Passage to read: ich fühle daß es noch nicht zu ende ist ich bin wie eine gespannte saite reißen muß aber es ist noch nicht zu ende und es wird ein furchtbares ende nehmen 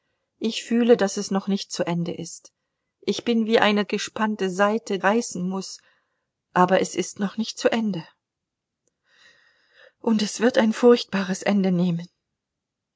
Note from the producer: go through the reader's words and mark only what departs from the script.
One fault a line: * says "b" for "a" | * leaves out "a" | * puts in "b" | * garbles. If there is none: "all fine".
all fine